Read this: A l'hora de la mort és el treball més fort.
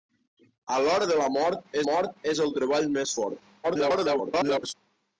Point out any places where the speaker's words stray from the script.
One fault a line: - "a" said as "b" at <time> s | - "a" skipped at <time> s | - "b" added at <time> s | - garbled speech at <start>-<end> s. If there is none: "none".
- "mort" added at 1.9 s
- garbled speech at 3.6-4.7 s